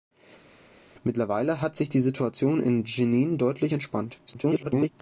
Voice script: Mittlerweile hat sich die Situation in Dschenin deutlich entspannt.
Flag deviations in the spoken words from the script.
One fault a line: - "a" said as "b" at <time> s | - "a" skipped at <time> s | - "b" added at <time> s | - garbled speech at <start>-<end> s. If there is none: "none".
- garbled speech at 4.3-4.9 s